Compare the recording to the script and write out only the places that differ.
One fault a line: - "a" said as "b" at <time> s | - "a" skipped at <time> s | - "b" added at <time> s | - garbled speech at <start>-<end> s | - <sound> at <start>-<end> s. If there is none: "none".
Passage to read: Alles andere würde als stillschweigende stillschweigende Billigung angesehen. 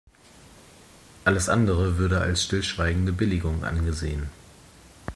- "stillschweigende" skipped at 3.1 s